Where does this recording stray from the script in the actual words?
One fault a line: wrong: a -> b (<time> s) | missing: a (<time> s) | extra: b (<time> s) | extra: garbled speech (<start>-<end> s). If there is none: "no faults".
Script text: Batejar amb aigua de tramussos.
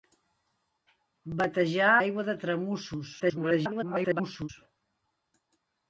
missing: amb (1.9 s)
extra: garbled speech (3.2-4.5 s)